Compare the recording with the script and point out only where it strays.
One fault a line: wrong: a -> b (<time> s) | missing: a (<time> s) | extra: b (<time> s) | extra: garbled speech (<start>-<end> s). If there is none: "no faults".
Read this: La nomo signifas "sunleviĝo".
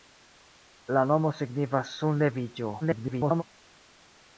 extra: garbled speech (2.8-3.4 s)